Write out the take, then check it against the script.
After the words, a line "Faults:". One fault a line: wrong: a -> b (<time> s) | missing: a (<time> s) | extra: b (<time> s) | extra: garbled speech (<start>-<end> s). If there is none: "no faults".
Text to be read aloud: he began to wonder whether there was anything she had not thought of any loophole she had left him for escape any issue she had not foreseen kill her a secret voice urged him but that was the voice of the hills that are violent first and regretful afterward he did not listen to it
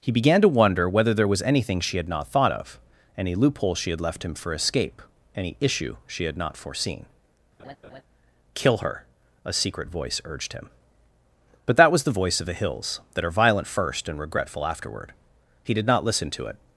he began to wonder whether there was anything she had not thought of any loophole she had left him for escape any issue she had not foreseen kill her a secret voice urged him but that was the voice of the hills that are violent first and regretful afterward he did not listen to it
Faults:
no faults